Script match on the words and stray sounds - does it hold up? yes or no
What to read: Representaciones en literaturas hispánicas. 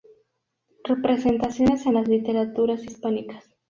no